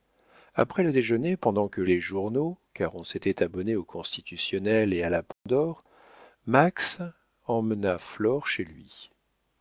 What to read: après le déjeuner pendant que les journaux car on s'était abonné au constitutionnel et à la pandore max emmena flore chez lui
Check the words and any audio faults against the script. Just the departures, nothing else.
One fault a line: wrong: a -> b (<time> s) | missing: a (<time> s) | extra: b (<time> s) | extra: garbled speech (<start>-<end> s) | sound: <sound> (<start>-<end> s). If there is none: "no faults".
sound: dropout (5.3-5.5 s)